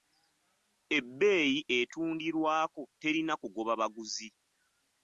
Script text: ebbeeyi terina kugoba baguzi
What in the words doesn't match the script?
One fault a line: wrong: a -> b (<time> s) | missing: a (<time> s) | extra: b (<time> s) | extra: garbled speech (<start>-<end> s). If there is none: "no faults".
extra: etundirwako (1.8 s)